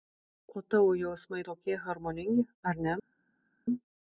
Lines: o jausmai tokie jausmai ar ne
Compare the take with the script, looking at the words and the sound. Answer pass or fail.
fail